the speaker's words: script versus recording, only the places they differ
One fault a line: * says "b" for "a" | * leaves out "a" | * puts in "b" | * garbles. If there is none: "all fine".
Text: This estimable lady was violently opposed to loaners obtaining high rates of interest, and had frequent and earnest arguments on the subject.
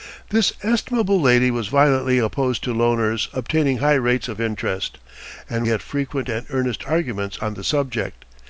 all fine